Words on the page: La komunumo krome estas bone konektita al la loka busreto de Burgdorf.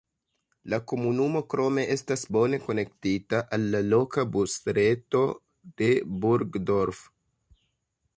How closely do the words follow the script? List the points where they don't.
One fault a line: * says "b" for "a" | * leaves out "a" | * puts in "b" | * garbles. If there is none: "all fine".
all fine